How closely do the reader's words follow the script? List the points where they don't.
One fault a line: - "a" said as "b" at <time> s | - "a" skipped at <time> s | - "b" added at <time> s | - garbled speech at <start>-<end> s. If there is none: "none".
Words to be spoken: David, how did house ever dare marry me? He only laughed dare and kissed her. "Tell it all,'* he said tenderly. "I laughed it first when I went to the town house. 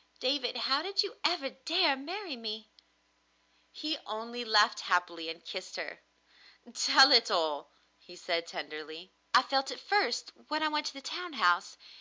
- "house" said as "you" at 1.0 s
- "dare" said as "happily" at 4.9 s
- "laughed" said as "felt" at 9.4 s